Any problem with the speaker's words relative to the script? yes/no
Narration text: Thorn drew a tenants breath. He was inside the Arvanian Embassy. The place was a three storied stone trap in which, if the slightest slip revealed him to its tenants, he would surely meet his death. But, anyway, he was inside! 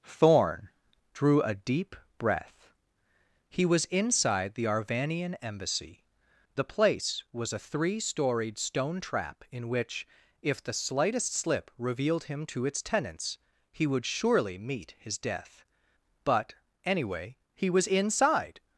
yes